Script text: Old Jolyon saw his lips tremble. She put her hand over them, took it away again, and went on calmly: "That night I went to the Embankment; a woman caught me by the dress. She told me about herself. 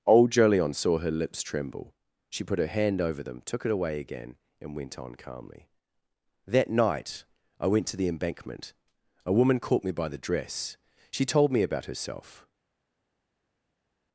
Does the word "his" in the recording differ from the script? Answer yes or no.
yes